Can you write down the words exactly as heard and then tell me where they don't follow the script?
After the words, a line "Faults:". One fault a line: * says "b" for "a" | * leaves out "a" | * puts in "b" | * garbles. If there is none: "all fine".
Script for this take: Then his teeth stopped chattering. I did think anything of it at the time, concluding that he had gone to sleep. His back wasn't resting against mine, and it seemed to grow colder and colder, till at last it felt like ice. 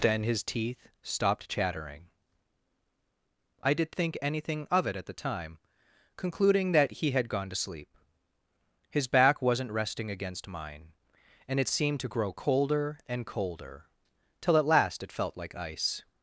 Then his teeth stopped chattering. I did think anything of it at the time, concluding that he had gone to sleep. His back wasn't resting against mine, and it seemed to grow colder and colder, till at last it felt like ice.
Faults:
all fine